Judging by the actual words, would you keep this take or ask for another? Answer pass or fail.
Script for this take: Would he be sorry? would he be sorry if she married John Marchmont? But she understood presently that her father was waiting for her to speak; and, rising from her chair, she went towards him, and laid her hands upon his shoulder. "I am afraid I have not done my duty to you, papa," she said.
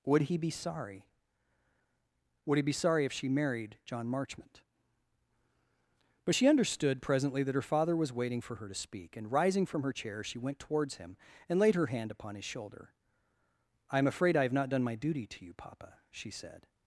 fail